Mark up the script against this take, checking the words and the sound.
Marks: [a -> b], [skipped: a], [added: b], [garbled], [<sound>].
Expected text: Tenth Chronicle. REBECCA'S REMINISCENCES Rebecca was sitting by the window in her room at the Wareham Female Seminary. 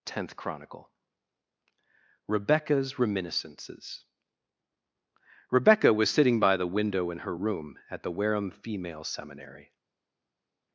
Tenth Chronicle. REBECCA'S REMINISCENCES Rebecca was sitting by the window in her room at the Wareham Female Seminary.